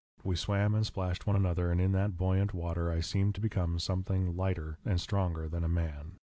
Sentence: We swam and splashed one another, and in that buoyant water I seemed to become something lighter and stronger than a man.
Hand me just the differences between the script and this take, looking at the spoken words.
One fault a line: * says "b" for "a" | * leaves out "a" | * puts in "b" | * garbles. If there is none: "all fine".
all fine